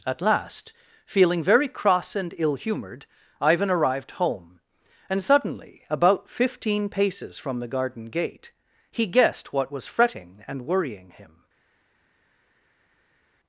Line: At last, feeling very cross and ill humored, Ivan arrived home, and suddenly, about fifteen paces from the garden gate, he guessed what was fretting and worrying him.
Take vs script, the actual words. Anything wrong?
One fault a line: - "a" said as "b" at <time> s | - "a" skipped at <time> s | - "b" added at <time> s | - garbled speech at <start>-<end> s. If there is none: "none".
none